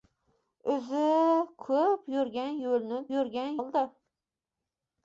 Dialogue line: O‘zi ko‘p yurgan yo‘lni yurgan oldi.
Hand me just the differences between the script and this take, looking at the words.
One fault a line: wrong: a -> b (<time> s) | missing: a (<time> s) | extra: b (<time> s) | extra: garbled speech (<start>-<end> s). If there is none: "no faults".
no faults